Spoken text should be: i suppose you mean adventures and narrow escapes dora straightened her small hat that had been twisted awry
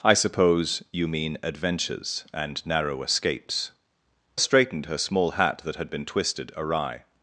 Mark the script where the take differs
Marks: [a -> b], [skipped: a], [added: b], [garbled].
i suppose you mean adventures and narrow escapes [skipped: dora] straightened her small hat that had been twisted awry